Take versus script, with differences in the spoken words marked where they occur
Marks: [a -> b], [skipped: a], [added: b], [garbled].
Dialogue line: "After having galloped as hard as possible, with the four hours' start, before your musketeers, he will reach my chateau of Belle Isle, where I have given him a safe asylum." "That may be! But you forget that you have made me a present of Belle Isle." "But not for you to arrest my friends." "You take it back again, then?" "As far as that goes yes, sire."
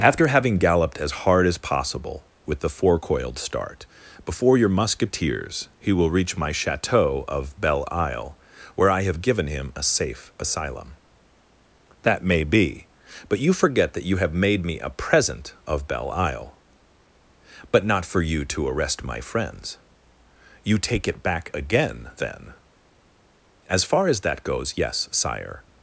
"After having galloped as hard as possible, with the four [hours' -> coiled] start, before your musketeers, he will reach my chateau of Belle Isle, where I have given him a safe asylum." "That may be! But you forget that you have made me a present of Belle Isle." "But not for you to arrest my friends." "You take it back again, then?" "As far as that goes yes, sire."